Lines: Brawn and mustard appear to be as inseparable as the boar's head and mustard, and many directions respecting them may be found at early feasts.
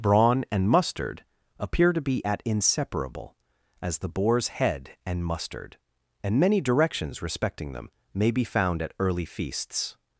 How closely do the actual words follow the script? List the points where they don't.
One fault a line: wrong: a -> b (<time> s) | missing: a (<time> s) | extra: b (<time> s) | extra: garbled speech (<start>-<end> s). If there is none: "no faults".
wrong: as -> at (2.2 s)